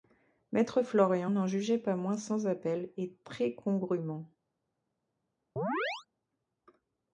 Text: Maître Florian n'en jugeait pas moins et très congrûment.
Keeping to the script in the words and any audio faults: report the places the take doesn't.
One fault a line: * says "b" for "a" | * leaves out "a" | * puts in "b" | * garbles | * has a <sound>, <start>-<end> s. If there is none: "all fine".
* puts in "sans appel"
* has a chirp, 5.6-6.1 s